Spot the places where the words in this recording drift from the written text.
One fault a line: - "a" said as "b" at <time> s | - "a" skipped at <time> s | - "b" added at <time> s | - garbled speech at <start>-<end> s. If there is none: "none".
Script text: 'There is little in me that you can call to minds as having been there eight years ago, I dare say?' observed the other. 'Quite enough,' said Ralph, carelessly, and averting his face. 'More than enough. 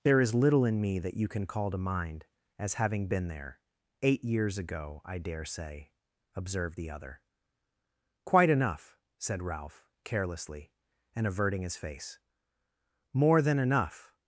- "minds" said as "mind" at 1.8 s